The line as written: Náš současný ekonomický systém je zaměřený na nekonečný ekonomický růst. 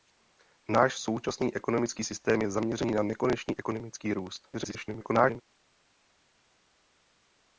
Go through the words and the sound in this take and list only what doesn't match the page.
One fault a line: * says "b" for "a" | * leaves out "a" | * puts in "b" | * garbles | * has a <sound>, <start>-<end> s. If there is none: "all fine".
* garbles